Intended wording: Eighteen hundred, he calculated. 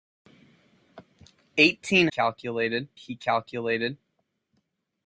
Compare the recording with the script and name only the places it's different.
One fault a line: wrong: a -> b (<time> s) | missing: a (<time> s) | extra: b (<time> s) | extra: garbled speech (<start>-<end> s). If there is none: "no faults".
wrong: hundred -> calculated (2.1 s)